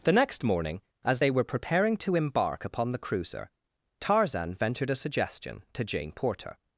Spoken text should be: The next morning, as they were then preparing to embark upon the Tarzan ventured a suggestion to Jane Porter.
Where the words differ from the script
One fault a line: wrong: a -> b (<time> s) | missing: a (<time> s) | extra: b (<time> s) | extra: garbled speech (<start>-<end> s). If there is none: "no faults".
missing: then (1.4 s)
extra: cruiser (3.0 s)